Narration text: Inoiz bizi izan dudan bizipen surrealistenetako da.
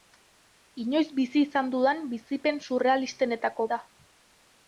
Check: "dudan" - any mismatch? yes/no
no